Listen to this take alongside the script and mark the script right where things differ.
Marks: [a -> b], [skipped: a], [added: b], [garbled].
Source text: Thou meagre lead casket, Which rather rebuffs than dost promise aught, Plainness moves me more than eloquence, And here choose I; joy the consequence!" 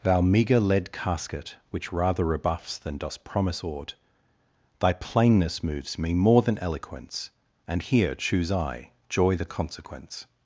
Thou meagre lead casket, Which rather rebuffs than dost promise aught, [added: Thy] Plainness moves me more than eloquence, And here choose I; joy the consequence!"